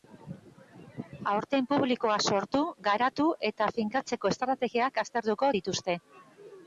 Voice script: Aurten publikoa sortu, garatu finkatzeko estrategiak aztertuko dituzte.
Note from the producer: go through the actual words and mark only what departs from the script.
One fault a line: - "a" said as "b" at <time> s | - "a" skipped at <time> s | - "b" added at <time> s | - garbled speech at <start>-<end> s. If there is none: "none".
- "eta" added at 3.5 s